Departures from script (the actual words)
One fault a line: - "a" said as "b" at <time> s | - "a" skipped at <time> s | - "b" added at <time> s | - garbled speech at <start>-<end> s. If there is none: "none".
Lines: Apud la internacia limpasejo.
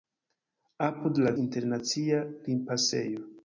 none